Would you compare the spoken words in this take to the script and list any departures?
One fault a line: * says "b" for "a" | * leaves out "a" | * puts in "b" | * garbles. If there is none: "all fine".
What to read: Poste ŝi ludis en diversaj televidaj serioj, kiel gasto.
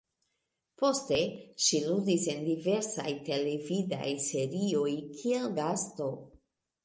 all fine